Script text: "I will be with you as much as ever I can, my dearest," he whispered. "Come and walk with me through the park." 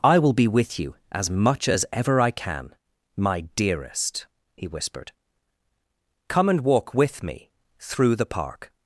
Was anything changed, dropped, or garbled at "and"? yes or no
no